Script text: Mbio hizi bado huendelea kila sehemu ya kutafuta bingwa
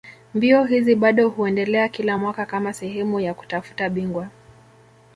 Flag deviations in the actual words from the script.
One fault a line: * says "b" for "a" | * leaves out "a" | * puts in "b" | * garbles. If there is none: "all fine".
* puts in "mwaka kama"